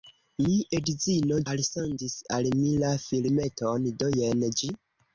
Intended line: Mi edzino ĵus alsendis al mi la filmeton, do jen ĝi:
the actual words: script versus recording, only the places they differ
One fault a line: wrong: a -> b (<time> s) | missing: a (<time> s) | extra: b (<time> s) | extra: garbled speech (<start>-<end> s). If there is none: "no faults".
missing: ĵus (1.4 s)